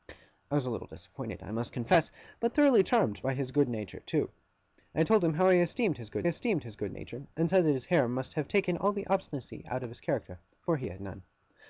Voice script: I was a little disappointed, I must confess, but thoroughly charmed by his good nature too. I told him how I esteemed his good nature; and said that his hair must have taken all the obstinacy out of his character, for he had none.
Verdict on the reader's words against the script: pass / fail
fail